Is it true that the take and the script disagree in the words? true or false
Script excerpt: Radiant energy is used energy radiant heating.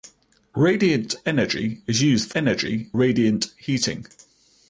false